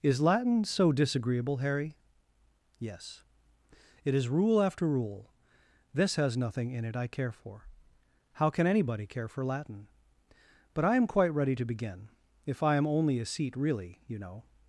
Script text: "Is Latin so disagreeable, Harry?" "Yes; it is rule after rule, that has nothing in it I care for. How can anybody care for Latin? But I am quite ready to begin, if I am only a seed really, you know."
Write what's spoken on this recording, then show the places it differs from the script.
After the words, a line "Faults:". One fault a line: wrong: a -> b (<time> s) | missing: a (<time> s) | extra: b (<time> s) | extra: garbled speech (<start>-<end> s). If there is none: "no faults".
"Is Latin so disagreeable, Harry?" "Yes; it is rule after rule, this has nothing in it I care for. How can anybody care for Latin? But I am quite ready to begin, if I am only a seat really, you know."
Faults:
wrong: that -> this (5.9 s)
wrong: seed -> seat (13.2 s)